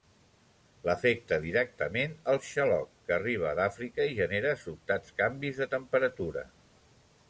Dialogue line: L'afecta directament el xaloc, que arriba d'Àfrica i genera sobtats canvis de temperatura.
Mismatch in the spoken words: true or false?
false